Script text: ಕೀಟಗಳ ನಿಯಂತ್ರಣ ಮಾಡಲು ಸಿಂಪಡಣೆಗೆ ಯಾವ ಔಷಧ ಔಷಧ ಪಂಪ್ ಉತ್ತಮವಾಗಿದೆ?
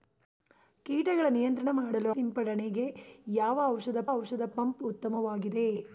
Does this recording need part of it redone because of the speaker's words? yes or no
no